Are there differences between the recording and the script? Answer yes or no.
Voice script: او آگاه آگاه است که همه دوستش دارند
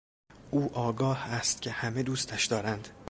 yes